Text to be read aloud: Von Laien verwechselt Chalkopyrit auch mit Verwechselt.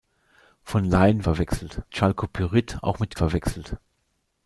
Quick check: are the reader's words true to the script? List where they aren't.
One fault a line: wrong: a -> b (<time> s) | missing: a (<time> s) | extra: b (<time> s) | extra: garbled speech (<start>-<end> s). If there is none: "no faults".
no faults